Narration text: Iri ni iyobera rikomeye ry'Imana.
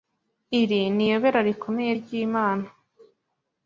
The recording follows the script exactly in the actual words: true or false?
true